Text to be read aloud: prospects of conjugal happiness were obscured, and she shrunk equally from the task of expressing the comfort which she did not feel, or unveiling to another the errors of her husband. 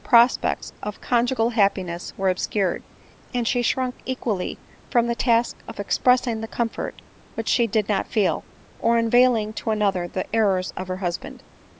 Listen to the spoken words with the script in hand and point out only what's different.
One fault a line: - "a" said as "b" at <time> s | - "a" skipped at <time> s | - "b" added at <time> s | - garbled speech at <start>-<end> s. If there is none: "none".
none